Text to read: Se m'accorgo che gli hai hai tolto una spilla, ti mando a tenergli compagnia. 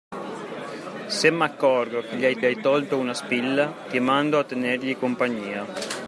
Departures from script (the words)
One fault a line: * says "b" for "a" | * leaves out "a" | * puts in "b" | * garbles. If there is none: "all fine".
all fine